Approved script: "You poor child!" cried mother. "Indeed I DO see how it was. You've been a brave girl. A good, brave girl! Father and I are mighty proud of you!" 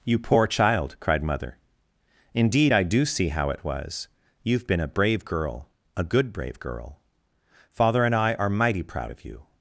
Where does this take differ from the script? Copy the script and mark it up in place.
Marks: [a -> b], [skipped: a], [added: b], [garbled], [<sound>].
"You poor child!" cried mother. "Indeed I DO see how it was. You've been a brave girl. A good, brave girl! Father and I are mighty proud of you!"